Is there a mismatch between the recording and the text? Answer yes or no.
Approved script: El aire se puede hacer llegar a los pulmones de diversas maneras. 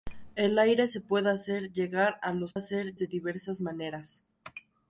yes